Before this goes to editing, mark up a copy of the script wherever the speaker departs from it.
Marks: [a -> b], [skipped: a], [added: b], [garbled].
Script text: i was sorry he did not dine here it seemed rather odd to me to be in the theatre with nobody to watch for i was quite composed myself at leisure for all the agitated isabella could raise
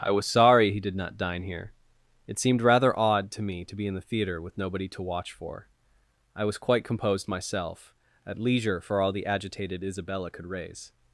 i was sorry he did not dine here it seemed rather odd to me to be in the theatre with nobody to watch for i was quite composed myself at leisure for all the agitated isabella could raise